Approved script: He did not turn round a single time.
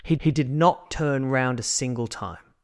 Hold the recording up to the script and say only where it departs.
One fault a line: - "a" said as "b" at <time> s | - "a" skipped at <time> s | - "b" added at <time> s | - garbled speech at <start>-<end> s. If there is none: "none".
- "he" added at 0.2 s